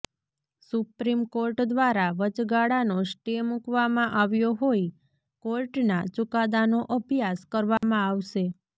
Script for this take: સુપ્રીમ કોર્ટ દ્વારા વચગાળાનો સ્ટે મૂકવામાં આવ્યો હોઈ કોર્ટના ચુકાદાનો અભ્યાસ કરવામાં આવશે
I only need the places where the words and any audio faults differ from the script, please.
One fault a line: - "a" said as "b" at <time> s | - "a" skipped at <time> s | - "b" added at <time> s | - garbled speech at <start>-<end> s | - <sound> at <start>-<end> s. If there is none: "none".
- dropout at 7.8-7.8 s